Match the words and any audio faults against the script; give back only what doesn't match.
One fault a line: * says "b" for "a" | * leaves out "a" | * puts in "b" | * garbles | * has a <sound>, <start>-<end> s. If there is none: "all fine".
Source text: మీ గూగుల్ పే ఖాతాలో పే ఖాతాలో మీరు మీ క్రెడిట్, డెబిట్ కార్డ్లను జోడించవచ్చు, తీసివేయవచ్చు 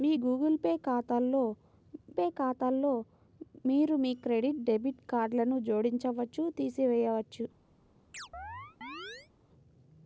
* has a chirp, 8.1-9.3 s